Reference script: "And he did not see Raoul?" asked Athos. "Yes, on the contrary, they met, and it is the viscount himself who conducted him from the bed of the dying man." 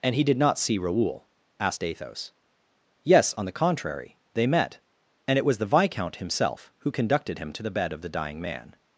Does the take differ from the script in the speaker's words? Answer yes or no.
yes